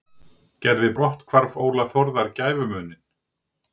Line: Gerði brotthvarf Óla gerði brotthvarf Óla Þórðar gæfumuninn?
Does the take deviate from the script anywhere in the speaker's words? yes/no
yes